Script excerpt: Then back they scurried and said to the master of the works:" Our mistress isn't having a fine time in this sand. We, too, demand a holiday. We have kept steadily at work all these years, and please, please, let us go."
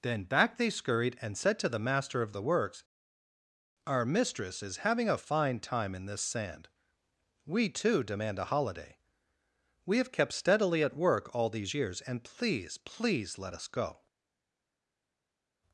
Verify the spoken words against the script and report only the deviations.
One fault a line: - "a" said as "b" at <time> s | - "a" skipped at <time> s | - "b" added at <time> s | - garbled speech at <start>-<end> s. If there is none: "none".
- "isn't" said as "is" at 4.6 s